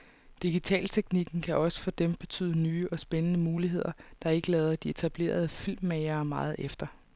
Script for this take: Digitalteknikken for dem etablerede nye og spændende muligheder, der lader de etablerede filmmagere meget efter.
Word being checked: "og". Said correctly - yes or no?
yes